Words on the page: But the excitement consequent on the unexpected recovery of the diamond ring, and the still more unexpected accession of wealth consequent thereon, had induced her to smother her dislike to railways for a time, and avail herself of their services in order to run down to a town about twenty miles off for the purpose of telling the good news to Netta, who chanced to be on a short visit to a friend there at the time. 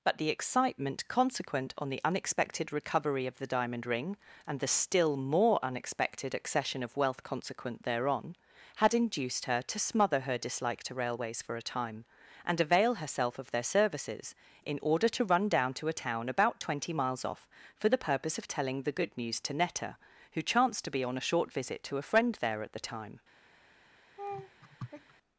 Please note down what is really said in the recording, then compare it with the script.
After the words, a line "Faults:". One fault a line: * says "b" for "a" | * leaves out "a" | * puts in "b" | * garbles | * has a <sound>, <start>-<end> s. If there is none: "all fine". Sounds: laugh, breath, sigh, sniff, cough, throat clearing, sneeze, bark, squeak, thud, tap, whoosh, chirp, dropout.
But the excitement consequent on the unexpected recovery of the diamond ring, and the still more unexpected accession of wealth consequent thereon, had induced her to smother her dislike to railways for a time, and avail herself of their services in order to run down to a town about twenty miles off for the purpose of telling the good news to Netta, who chanced to be on a short visit to a friend there at the time.
Faults:
* has a laugh, 24.2-25.1 s